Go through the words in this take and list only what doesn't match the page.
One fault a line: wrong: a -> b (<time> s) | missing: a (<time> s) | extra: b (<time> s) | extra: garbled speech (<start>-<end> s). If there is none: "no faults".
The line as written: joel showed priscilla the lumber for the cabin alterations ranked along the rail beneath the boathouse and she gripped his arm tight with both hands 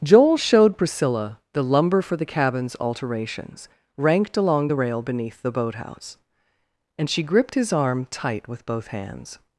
wrong: cabin -> cabins (2.2 s)